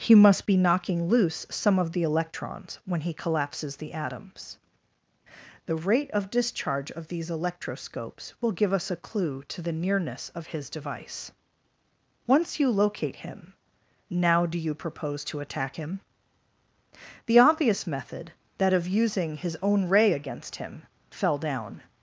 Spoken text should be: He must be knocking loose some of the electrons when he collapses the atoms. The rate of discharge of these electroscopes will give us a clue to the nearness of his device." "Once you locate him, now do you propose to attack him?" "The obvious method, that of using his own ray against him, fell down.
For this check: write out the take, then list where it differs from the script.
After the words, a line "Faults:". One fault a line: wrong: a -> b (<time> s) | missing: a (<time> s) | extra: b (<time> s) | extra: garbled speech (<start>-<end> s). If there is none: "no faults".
He must be knocking loose some of the electrons when he collapses the atoms. The rate of discharge of these electroscopes will give us a clue to the nearness of his device." "Once you locate him, now do you propose to attack him?" "The obvious method, that of using his own ray against him, fell down.
Faults:
no faults